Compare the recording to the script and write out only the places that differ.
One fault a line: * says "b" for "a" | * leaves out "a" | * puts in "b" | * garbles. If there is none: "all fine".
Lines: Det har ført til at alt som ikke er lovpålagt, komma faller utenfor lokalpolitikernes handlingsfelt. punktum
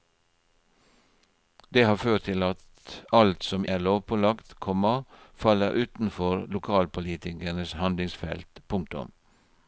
* leaves out "ikke"